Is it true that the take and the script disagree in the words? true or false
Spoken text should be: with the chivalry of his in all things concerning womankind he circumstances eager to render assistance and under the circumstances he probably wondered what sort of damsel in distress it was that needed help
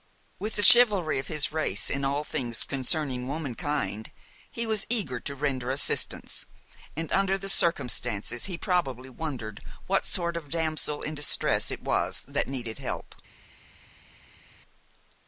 true